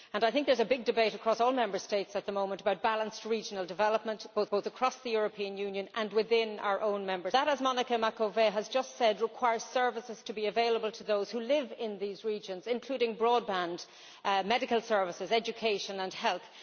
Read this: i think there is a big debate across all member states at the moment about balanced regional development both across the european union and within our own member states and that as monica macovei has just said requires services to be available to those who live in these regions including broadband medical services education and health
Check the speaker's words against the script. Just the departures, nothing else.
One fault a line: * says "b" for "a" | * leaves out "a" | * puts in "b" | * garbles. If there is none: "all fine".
* puts in "both"
* leaves out "states and"